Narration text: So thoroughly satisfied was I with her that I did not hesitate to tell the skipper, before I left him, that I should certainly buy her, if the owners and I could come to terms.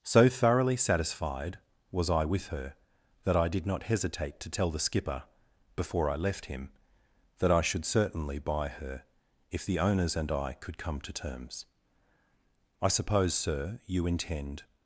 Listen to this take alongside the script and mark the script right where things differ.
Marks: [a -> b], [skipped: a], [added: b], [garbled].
So thoroughly satisfied was I with her that I did not hesitate to tell the skipper, before I left him, that I should certainly buy her, if the owners and I could come to terms. [added: I suppose sir you intend]